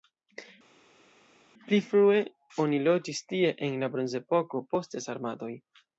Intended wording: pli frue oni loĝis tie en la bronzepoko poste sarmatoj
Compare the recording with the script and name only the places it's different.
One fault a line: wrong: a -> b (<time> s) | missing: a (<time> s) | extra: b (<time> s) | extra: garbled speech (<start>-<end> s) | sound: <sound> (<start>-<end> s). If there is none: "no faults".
no faults